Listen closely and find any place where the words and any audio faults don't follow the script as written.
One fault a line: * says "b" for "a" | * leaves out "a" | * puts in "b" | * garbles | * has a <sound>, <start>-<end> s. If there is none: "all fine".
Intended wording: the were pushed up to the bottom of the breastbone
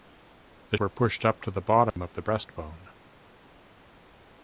* has a dropout, 1.9-2.0 s